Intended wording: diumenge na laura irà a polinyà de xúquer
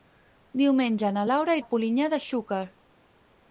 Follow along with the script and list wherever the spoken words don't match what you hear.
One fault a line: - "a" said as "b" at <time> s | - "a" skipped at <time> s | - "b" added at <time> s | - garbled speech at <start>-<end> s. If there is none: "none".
- "irà" skipped at 1.6 s